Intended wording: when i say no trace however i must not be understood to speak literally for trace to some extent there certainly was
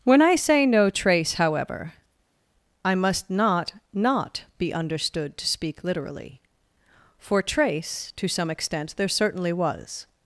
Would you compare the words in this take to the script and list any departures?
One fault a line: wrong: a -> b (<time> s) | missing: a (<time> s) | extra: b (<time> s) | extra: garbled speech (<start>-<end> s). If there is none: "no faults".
extra: not (3.9 s)